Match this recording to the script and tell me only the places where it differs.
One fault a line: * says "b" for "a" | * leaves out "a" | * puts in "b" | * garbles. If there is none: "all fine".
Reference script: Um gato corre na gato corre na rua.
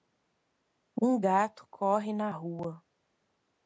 * leaves out "gato corre na"